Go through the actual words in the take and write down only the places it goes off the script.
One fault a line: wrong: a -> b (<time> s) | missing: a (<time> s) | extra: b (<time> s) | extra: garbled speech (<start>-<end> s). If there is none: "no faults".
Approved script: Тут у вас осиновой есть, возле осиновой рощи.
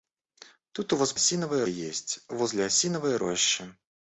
no faults